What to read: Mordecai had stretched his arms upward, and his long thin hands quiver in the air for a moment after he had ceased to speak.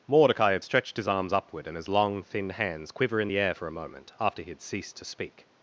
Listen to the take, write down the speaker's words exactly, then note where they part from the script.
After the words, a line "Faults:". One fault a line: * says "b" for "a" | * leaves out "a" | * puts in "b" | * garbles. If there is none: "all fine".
Mordecai had stretched his arms upward, and his long thin hands quiver in the air for a moment after he had ceased to speak.
Faults:
all fine